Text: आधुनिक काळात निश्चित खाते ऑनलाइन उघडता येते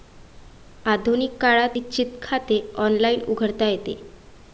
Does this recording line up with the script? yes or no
yes